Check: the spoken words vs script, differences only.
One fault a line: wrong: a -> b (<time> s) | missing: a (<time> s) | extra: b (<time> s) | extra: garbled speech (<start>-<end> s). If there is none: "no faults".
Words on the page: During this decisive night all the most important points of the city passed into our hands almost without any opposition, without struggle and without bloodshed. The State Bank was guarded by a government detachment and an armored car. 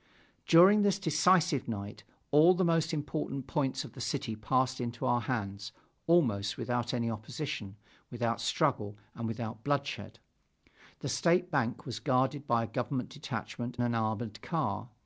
missing: and (13.8 s)